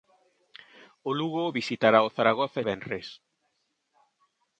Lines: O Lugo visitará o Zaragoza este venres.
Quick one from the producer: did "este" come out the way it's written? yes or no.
no